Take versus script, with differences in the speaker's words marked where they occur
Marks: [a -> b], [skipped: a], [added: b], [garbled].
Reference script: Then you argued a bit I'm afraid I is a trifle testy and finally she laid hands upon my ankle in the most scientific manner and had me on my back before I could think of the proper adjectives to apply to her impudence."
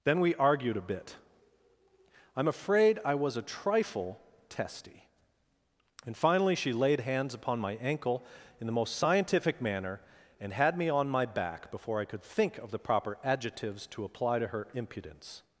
Then [you -> we] argued a bit I'm afraid I [is -> was] a trifle testy and finally she laid hands upon my ankle in the most scientific manner and had me on my back before I could think of the proper adjectives to apply to her impudence."